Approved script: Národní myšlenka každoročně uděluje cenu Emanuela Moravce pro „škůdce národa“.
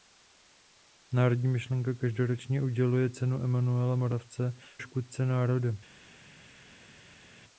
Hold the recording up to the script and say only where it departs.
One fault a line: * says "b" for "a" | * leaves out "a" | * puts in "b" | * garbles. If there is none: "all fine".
* leaves out "pro"